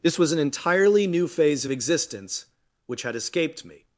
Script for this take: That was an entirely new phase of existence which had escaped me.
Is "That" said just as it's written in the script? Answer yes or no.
no